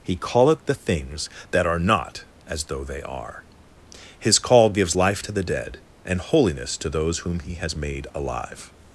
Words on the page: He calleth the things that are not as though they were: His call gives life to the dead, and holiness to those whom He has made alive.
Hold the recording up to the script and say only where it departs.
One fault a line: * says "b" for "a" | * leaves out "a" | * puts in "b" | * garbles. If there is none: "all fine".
* says "are" for "were"